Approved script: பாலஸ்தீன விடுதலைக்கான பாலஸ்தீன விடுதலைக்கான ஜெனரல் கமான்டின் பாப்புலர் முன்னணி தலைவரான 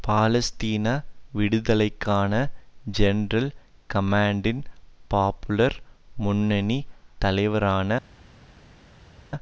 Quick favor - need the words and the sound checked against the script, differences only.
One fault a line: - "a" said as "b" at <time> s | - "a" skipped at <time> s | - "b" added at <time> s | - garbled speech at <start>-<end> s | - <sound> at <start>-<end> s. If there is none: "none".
- "பாலஸ்தீன விடுதலைக்கான" skipped at 2.3 s